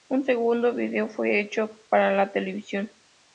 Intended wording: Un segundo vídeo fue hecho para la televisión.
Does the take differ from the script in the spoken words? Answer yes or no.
no